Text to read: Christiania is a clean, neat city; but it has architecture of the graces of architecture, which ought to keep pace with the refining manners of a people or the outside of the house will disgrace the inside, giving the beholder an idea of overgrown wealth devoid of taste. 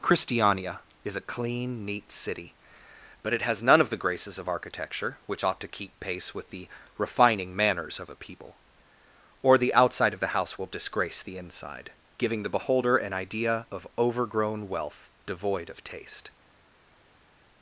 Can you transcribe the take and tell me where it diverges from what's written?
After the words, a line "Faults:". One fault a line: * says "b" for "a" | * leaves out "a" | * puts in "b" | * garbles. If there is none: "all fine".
Christiania is a clean, neat city; but it has none of the graces of architecture, which ought to keep pace with the refining manners of a people or the outside of the house will disgrace the inside, giving the beholder an idea of overgrown wealth devoid of taste.
Faults:
* says "none" for "architecture"